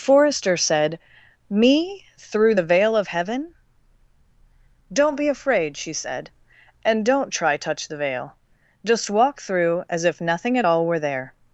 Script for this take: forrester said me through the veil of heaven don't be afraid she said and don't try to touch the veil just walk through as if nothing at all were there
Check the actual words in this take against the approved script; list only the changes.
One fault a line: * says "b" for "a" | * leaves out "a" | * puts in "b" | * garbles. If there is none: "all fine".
* leaves out "to"